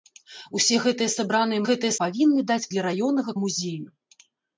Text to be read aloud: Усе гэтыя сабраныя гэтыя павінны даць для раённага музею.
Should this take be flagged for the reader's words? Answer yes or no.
no